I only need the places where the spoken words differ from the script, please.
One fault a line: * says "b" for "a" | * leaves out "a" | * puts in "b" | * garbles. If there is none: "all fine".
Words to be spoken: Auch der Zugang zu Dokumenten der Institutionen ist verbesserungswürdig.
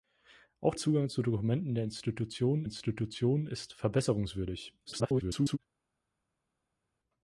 * leaves out "der"
* puts in "Institutionen"
* garbles